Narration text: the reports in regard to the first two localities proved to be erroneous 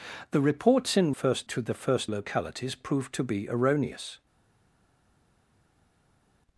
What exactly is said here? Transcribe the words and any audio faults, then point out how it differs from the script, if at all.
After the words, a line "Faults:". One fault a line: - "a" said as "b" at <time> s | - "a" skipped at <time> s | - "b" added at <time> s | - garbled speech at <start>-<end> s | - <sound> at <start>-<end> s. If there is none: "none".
the reports in first to the first localities proved to be erroneous
Faults:
- "regard" said as "first" at 1.1 s
- "two" skipped at 2.1 s